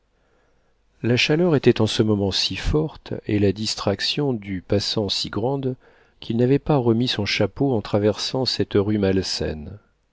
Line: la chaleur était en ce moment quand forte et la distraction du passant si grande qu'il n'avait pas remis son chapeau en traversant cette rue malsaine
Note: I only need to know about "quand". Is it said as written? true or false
false